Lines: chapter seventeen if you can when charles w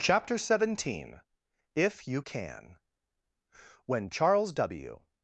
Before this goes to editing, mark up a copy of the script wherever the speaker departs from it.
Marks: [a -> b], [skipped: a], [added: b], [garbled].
chapter seventeen if you can when charles w